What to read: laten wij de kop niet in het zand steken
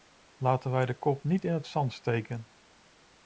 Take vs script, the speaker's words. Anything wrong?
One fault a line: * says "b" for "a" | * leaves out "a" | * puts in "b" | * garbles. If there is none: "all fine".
all fine